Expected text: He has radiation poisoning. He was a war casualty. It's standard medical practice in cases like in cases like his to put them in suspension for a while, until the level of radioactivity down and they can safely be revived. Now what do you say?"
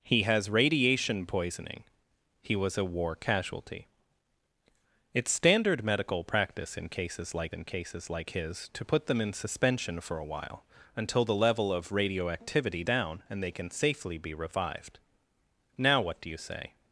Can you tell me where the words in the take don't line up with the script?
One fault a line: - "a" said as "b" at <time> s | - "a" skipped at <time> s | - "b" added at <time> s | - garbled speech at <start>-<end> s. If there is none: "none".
none